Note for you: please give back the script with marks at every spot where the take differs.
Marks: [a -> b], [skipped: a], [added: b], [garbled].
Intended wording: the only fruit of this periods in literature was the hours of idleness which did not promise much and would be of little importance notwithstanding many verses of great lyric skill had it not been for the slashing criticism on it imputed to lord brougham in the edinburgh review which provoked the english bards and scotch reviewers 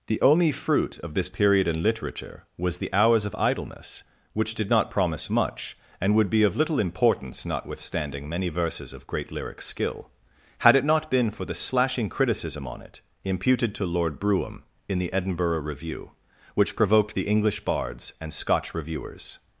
the only fruit of this [periods -> period] in literature was the hours of idleness which did not promise much and would be of little importance notwithstanding many verses of great lyric skill had it not been for the slashing criticism on it imputed to lord brougham in the edinburgh review which provoked the english bards and scotch reviewers